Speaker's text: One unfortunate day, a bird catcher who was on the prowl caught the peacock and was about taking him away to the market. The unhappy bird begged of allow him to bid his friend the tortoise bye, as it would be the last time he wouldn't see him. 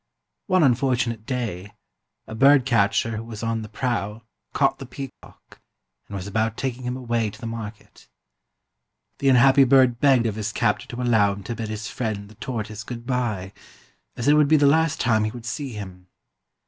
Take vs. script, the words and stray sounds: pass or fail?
fail